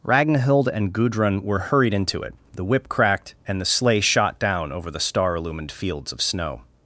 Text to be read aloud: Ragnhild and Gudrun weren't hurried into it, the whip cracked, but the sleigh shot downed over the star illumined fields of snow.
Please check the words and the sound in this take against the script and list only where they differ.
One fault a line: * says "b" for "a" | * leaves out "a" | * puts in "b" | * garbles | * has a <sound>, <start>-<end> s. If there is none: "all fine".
* says "were" for "weren't"
* says "and" for "but"
* says "down" for "downed"